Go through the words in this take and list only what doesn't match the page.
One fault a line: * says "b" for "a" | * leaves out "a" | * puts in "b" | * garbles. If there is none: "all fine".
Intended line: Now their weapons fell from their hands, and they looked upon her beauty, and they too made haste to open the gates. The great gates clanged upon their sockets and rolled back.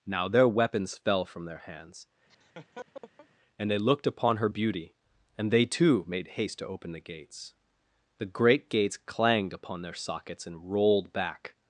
all fine